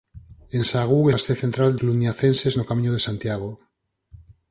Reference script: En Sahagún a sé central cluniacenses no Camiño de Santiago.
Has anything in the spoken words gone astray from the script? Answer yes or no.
no